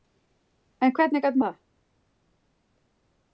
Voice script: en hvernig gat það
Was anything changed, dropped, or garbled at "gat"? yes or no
no